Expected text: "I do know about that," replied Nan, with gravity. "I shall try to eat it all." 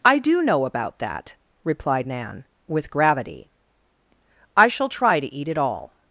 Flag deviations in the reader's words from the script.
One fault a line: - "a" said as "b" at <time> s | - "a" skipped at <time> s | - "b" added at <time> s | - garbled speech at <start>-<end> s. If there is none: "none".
none